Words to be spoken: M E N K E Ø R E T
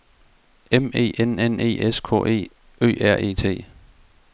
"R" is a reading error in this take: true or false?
false